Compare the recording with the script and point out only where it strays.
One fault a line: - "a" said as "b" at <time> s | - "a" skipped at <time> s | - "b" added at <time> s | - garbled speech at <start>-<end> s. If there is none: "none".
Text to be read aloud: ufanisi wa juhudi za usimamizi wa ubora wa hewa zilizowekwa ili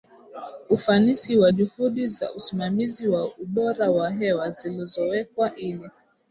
none